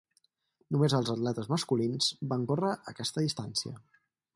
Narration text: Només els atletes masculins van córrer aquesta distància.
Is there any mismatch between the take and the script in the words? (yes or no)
no